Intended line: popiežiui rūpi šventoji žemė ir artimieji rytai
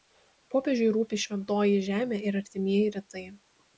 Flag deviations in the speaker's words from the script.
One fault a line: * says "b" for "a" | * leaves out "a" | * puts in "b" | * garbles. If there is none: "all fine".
all fine